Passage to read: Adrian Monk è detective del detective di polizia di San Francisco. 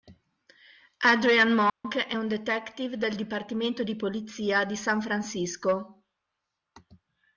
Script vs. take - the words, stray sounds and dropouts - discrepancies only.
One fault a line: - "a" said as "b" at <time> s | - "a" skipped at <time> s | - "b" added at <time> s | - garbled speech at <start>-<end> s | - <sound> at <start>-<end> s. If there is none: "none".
- dropout at 1.7-1.8 s
- "un" added at 2.2 s
- "detective" said as "dipartimento" at 3.2 s